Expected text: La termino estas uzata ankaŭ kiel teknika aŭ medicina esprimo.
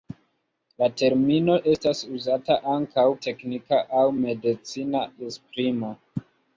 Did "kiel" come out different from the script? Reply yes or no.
yes